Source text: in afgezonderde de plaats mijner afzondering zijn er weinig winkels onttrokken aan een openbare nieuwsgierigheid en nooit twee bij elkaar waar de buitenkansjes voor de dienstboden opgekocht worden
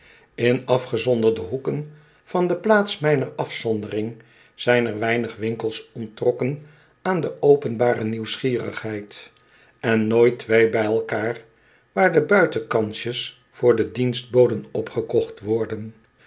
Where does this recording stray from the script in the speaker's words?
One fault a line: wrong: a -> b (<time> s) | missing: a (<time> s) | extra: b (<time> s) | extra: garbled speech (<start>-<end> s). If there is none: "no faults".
extra: hoeken van (1.4 s)
wrong: een -> de (7.2 s)